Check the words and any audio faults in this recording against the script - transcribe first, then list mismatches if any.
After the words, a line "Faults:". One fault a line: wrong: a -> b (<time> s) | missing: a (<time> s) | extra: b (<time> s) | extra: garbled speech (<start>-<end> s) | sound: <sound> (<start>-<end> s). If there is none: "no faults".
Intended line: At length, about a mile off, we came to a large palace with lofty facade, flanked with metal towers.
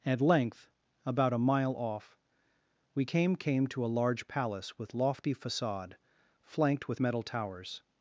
At length, about a mile off, we came came to a large palace with lofty facade, flanked with metal towers.
Faults:
extra: came (3.4 s)